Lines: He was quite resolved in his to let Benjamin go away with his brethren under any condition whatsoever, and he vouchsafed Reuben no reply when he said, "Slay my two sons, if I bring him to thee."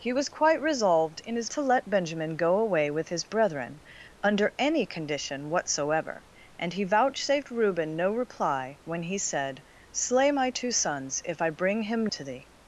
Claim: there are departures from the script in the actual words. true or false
false